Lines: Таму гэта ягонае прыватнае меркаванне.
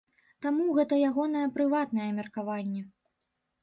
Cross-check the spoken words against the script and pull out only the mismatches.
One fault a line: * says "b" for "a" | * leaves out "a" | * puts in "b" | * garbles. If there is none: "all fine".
all fine